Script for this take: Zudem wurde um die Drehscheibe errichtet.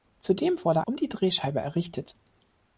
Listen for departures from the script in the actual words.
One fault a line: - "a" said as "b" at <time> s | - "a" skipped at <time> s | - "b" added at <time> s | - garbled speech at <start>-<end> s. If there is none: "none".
none